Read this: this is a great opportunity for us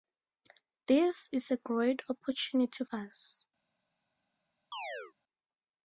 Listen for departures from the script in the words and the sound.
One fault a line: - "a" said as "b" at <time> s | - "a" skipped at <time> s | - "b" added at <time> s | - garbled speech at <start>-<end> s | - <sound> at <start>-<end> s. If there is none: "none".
- "for" skipped at 2.9 s
- chirp at 4.7-5.1 s